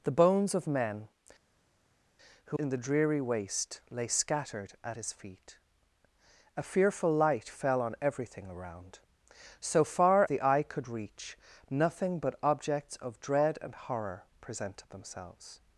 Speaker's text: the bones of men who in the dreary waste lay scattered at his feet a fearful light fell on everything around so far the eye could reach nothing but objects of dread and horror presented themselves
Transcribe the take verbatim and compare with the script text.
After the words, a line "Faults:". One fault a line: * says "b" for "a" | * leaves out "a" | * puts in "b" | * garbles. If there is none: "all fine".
the bones of men who in the dreary waste lay scattered at his feet a fearful light fell on everything around so far the eye could reach nothing but objects of dread and horror presented themselves
Faults:
all fine